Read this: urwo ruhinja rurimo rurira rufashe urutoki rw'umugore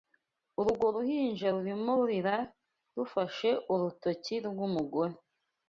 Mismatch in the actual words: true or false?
false